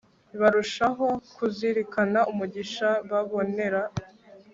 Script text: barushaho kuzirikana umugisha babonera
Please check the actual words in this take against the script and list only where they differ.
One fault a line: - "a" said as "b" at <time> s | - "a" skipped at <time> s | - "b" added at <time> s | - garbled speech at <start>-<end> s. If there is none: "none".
none